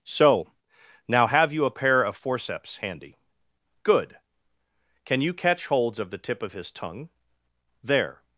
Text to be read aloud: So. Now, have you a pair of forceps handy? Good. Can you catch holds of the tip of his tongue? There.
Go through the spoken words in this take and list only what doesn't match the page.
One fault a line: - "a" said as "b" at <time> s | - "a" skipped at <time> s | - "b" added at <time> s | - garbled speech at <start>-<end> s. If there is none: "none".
none